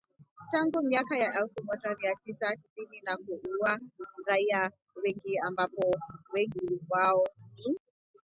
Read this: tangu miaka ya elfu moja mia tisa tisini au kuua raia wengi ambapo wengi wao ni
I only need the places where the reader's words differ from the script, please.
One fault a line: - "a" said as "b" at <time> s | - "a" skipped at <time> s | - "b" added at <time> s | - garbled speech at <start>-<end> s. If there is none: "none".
- "au" said as "na" at 3.0 s